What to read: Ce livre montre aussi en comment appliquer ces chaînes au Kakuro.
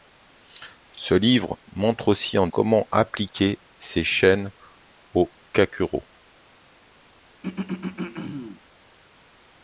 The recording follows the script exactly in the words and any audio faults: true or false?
false